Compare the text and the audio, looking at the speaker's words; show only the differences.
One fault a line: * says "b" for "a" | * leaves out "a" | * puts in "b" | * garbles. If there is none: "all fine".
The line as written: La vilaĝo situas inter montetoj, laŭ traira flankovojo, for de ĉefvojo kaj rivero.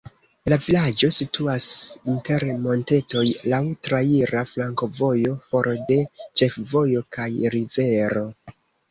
all fine